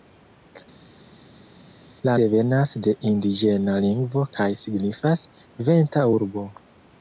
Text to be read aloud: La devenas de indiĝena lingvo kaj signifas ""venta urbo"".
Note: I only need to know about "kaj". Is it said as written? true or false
true